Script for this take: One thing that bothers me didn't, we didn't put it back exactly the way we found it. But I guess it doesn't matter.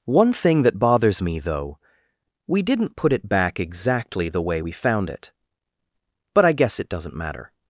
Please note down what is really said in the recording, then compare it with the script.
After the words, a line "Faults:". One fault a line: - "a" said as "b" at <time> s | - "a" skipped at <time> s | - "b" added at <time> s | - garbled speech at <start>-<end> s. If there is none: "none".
One thing that bothers me though, we didn't put it back exactly the way we found it. But I guess it doesn't matter.
Faults:
- "didn't" said as "though" at 1.4 s